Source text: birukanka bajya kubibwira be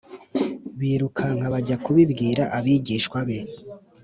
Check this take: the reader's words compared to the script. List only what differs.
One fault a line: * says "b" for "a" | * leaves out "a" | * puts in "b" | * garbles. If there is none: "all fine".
* puts in "abigishwa"